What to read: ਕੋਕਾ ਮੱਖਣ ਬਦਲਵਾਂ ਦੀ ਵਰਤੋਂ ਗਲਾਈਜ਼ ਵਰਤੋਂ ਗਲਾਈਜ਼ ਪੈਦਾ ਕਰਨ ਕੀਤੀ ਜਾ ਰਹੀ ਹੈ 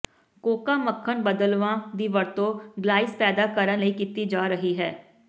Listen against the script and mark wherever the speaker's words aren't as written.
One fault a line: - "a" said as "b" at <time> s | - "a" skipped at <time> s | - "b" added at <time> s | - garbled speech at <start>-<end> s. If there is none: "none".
- "ਵਰਤੋਂ ਗਲਾਈਜ਼" skipped at 3.1 s
- "ਲਈ" added at 3.8 s